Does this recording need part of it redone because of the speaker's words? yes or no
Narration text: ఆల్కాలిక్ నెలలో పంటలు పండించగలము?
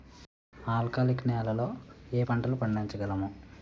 yes